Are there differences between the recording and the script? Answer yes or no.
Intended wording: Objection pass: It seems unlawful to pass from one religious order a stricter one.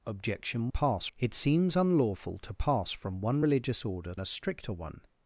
no